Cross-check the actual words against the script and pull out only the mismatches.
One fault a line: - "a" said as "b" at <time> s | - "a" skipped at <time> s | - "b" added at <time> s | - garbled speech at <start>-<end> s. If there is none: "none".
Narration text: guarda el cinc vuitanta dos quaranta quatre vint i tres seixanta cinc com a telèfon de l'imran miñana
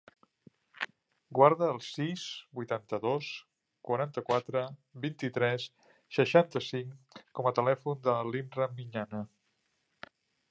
- "cinc" said as "sis" at 1.9 s